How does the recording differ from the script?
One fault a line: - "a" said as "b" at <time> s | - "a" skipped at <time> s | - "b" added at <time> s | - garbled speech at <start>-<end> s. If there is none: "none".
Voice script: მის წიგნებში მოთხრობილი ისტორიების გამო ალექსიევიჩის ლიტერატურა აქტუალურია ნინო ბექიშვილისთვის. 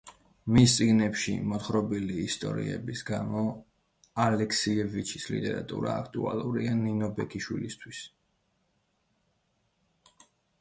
none